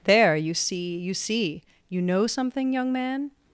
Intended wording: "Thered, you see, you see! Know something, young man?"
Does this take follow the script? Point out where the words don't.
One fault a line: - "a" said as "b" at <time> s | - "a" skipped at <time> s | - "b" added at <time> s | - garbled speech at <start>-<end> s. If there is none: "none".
- "Thered" said as "There" at 0.1 s
- "You" added at 1.9 s